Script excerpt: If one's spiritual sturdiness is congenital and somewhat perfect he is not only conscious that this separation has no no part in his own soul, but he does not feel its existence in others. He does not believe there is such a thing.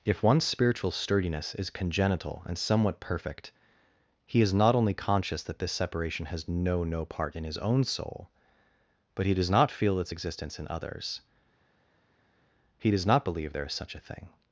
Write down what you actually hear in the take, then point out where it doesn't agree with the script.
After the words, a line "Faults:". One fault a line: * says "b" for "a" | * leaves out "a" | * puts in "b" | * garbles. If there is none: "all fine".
If one's spiritual sturdiness is congenital and somewhat perfect he is not only conscious that this separation has no no part in his own soul, but he does not feel its existence in others. He does not believe there is such a thing.
Faults:
all fine